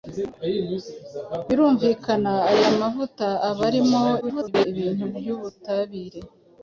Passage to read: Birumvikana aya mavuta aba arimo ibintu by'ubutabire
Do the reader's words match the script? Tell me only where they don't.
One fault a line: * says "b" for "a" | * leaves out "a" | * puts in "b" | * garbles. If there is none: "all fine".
* garbles